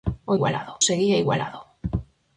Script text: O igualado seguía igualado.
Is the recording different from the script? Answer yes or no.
no